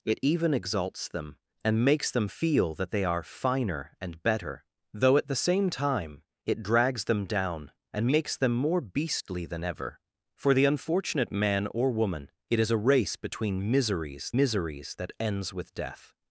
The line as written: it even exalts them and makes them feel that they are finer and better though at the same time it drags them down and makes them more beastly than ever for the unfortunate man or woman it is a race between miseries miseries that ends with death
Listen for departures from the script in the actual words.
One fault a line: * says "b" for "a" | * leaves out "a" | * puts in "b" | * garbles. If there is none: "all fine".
all fine